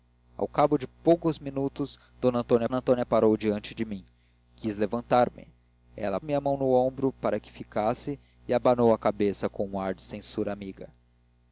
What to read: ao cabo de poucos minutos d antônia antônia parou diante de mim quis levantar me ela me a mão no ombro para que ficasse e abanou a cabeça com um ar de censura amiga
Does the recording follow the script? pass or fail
pass